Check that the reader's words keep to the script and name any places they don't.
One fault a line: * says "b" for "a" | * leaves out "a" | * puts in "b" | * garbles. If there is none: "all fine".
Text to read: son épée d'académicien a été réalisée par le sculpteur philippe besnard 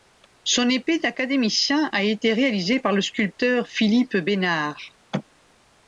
all fine